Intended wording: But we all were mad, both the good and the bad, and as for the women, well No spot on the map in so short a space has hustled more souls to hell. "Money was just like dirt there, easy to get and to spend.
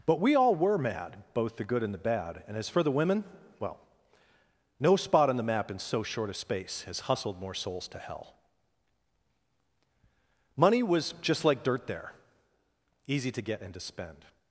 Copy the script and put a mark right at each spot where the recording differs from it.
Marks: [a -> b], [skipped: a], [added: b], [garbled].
But we all were mad, both the good and the bad, and as for the women, well No spot on the map in so short a space has hustled more souls to hell. "Money was just like dirt there, easy to get and to spend.